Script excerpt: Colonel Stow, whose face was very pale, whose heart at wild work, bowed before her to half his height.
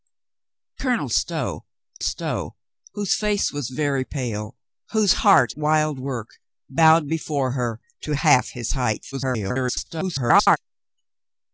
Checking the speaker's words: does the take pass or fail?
fail